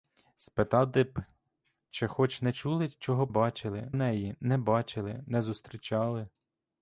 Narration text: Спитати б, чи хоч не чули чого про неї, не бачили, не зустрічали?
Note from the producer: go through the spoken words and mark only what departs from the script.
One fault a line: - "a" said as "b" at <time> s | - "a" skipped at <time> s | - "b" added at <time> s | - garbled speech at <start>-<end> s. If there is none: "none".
- "про" said as "бачили" at 3.3 s